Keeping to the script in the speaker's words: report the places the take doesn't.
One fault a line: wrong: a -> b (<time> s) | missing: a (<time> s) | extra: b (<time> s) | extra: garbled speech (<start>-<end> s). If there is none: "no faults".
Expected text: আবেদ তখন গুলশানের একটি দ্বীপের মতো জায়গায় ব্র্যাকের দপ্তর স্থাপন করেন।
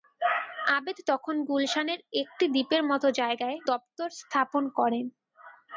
missing: ব্র্যাকের (3.6 s)